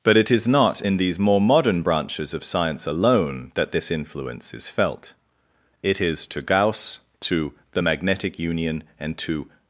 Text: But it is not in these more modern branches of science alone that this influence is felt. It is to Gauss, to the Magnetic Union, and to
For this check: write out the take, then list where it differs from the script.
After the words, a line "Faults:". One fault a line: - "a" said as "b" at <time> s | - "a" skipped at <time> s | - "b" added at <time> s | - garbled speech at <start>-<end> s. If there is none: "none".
But it is not in these more modern branches of science alone that this influence is felt. It is to Gauss, to the Magnetic Union, and to
Faults:
none